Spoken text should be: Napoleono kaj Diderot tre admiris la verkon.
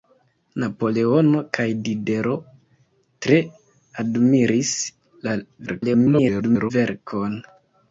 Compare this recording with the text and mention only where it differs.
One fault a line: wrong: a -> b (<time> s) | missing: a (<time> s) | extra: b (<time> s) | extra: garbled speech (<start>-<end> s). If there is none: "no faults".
extra: garbled speech (5.7-6.7 s)